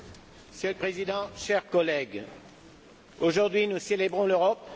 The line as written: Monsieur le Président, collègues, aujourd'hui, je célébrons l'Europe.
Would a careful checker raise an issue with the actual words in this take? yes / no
yes